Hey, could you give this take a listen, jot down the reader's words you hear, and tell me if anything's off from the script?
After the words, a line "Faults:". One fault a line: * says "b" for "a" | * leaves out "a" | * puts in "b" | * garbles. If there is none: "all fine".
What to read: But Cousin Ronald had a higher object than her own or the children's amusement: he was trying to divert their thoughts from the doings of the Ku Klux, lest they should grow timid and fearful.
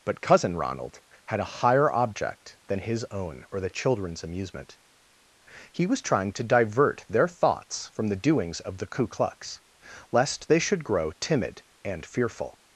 But Cousin Ronald had a higher object than his own or the children's amusement: he was trying to divert their thoughts from the doings of the Ku Klux, lest they should grow timid and fearful.
Faults:
* says "his" for "her"